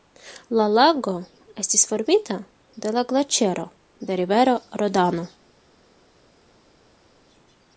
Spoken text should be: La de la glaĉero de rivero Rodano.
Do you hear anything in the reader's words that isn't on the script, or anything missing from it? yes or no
yes